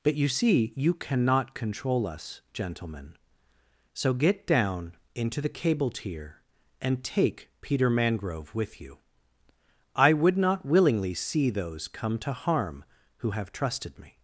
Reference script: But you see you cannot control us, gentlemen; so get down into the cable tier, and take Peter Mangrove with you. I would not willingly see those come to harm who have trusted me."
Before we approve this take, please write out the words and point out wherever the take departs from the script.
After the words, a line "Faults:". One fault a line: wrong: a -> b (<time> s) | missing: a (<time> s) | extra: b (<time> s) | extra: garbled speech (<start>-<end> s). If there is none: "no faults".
But you see you cannot control us, gentlemen; so get down into the cable tier, and take Peter Mangrove with you. I would not willingly see those come to harm who have trusted me."
Faults:
no faults